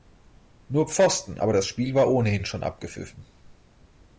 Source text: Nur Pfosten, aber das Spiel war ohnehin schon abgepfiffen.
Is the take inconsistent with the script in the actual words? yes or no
no